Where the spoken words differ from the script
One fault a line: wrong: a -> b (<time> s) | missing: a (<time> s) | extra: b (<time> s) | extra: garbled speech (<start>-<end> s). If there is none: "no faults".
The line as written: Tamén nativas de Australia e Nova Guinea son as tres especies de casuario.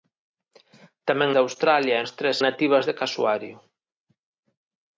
missing: nativas (1.3 s)
missing: Nova Guinea son (2.1 s)
wrong: especies -> nativas (2.5 s)